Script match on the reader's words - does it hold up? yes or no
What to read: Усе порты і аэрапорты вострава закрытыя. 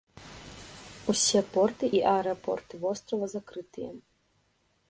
yes